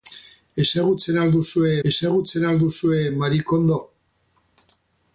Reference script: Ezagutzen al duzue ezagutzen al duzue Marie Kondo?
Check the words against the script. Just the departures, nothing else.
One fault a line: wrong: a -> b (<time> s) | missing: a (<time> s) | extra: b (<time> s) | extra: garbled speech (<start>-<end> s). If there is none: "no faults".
no faults